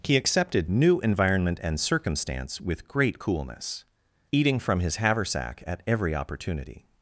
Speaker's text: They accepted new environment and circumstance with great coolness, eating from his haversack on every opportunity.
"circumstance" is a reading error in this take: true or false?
false